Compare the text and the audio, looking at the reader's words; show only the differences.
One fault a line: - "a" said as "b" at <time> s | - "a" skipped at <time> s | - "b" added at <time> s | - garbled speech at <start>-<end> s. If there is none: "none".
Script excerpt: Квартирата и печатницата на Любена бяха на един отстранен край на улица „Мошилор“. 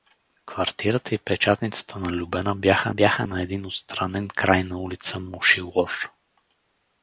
- "бяха" added at 2.9 s